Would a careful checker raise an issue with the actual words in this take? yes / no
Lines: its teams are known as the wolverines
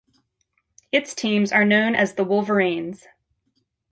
no